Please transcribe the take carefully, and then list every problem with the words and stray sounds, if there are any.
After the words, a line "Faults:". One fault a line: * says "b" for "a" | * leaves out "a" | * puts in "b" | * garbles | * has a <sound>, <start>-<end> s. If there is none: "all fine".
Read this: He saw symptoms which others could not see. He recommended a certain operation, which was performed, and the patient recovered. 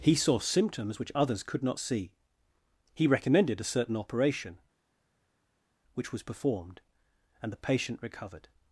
He saw symptoms which others could not see. He recommended a certain operation, which was performed, and the patient recovered.
Faults:
all fine